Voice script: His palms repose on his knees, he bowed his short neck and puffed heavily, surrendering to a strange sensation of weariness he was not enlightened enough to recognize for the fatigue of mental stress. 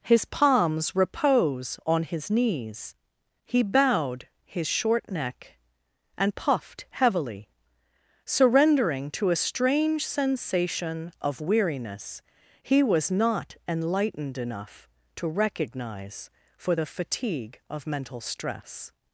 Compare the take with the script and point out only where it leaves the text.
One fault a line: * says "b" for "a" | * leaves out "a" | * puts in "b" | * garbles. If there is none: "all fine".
all fine